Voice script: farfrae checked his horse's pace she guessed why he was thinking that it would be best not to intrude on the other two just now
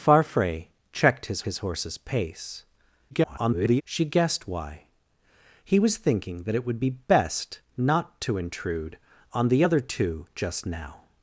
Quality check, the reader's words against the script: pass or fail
fail